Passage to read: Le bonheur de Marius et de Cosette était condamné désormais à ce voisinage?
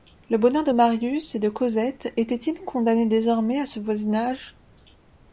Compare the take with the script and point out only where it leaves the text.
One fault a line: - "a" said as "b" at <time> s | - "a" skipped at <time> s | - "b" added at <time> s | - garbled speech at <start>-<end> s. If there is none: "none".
- "il" added at 2.4 s